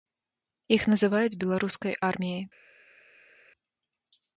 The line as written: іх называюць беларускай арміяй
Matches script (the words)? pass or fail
pass